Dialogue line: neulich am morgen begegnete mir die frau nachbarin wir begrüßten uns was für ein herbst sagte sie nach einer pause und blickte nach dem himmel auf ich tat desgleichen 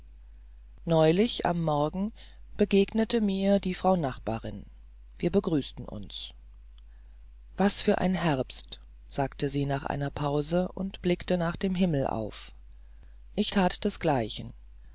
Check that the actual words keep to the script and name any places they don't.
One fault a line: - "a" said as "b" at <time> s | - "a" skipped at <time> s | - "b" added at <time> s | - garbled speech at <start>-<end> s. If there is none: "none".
none